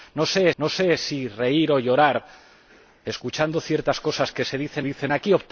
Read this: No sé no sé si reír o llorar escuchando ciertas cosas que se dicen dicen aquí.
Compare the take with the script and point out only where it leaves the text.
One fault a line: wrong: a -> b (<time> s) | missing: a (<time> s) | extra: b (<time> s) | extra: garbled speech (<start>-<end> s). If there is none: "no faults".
no faults